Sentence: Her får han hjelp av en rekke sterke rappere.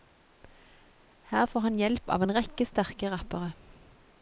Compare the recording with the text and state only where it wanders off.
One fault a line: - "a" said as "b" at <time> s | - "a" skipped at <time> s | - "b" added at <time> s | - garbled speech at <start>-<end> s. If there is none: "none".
none